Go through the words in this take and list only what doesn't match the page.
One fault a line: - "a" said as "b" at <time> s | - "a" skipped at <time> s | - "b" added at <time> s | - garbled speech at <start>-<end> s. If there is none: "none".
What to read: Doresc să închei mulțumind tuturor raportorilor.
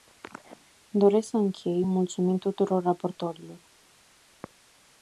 none